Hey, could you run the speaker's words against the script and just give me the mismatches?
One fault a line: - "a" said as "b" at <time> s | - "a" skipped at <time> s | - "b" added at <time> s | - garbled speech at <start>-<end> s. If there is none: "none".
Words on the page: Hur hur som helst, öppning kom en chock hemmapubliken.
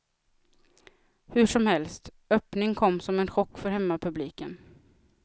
- "hur" skipped at 1.4 s
- "som" added at 3.0 s
- "för" added at 3.6 s